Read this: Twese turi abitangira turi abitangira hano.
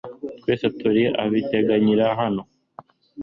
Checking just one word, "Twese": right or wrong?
right